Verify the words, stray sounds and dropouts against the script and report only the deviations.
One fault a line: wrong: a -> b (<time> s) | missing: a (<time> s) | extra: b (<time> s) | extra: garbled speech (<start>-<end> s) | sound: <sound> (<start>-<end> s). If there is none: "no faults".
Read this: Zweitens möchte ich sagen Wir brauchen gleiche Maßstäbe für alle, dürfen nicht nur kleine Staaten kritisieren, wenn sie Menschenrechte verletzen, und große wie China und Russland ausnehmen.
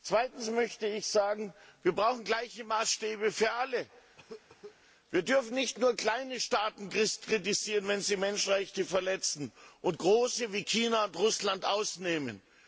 sound: cough (4.2-4.8 s)
extra: wir (5.1 s)